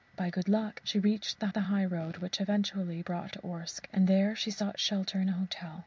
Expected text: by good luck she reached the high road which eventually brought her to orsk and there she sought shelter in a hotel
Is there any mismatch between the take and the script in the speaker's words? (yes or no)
yes